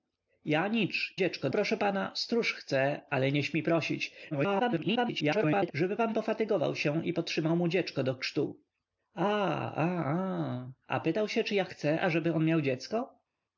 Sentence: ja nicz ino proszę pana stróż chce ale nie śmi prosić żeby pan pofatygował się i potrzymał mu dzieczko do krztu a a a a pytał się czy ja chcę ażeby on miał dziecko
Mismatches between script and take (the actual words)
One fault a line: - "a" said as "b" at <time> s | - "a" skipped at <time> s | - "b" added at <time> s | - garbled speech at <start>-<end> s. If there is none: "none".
- "ino" said as "dzieczko" at 1.1 s
- garbled speech at 4.3-5.7 s